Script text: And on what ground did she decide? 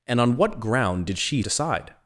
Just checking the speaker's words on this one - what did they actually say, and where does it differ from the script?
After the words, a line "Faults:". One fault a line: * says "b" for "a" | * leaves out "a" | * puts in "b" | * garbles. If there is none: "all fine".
And on what ground did she decide?
Faults:
all fine